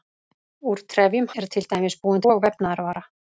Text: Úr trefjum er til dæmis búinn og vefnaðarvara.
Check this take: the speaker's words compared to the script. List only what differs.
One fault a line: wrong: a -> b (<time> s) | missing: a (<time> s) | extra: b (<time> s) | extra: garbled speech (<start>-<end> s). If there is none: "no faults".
no faults